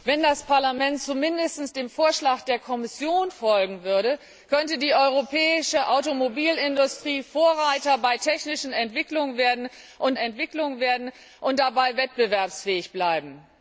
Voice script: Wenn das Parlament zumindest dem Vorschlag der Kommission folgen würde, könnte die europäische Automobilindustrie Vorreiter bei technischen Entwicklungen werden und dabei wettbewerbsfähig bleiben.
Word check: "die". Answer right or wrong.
right